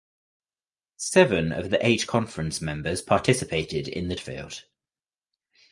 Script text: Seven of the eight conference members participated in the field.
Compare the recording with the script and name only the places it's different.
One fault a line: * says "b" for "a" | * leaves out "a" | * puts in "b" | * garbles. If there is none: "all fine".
all fine